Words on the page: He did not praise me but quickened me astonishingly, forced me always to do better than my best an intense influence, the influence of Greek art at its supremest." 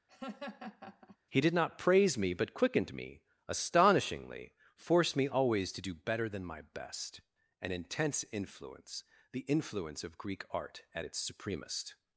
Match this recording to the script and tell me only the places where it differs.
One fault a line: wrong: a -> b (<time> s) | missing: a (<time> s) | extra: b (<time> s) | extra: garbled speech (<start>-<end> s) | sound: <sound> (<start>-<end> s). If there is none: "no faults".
sound: laugh (0.1-1.2 s)